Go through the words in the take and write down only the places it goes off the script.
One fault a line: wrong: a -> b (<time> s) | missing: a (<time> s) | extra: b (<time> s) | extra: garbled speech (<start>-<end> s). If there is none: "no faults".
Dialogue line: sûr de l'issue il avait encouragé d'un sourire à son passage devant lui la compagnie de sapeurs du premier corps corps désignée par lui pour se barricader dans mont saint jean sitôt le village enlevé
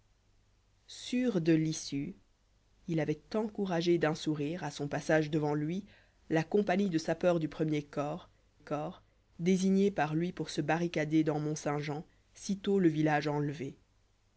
no faults